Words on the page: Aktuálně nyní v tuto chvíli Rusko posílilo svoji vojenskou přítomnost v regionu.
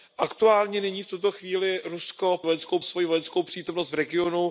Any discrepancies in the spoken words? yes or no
yes